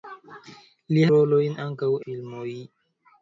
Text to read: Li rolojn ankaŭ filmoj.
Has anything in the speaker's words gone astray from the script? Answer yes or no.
no